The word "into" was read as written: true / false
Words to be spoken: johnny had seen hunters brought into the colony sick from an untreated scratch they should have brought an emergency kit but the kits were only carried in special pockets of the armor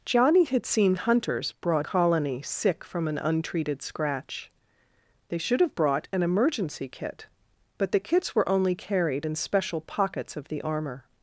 false